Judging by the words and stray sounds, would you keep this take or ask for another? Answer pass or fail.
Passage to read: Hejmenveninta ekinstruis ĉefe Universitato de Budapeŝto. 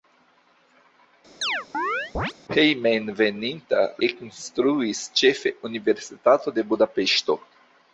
fail